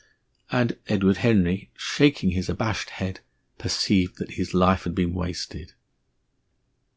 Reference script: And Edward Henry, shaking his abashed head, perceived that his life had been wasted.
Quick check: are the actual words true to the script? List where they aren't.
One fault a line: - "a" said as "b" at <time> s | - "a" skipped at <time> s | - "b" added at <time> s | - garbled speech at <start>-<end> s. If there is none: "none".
none